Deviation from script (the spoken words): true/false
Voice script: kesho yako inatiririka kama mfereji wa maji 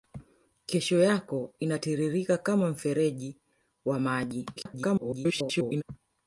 true